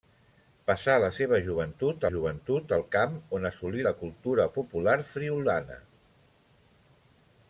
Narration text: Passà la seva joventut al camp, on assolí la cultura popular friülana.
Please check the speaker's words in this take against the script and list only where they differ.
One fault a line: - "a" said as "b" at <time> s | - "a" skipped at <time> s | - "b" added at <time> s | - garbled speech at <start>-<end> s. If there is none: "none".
- "joventut" added at 2.1 s